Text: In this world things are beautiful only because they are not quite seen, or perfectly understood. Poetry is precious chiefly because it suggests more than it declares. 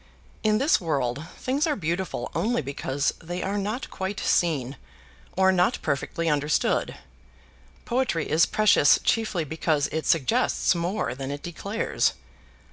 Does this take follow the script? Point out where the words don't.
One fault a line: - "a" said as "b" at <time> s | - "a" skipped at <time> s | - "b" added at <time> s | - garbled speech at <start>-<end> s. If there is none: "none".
- "not" added at 5.5 s